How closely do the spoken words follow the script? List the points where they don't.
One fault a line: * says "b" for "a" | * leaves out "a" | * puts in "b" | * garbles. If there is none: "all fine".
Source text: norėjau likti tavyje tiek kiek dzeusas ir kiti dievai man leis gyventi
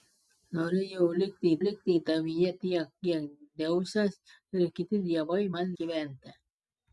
* puts in "likti"
* leaves out "leis"